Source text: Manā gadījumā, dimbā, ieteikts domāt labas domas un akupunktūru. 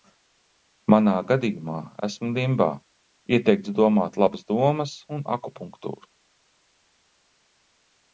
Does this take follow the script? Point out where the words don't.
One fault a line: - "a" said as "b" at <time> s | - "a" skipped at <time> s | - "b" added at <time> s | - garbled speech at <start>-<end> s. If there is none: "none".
- "esmu" added at 2.1 s